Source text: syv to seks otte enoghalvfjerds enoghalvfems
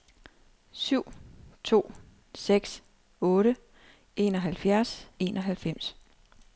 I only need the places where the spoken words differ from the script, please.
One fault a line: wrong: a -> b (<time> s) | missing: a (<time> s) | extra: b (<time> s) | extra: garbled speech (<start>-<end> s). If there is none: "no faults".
no faults